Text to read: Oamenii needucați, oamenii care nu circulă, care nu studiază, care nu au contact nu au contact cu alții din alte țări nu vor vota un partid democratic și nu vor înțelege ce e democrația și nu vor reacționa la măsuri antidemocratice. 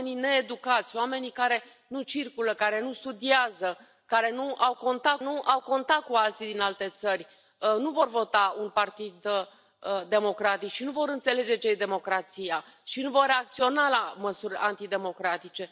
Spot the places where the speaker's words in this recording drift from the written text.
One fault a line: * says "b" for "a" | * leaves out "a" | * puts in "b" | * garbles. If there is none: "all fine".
all fine